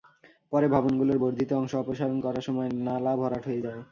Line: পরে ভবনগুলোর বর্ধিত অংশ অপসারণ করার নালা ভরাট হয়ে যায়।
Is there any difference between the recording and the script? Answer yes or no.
yes